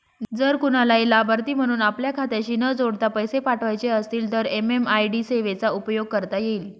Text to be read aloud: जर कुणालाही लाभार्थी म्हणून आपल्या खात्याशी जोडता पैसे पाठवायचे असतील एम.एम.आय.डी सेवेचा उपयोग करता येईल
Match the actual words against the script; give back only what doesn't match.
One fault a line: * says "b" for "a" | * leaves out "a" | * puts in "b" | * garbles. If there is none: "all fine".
* puts in "न"
* puts in "तर"